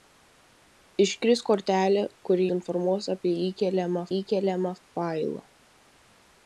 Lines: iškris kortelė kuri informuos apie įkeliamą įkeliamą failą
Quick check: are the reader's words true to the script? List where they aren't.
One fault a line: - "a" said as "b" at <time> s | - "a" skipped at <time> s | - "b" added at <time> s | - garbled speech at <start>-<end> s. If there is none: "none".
none